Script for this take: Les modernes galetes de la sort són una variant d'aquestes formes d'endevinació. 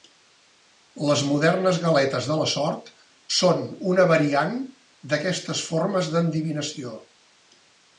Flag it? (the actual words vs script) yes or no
no